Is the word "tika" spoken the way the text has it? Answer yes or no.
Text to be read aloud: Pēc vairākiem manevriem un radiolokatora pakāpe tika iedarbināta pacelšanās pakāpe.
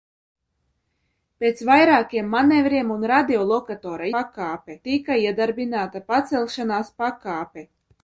yes